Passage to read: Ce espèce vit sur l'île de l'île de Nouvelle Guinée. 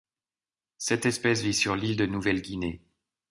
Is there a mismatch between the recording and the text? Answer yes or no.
yes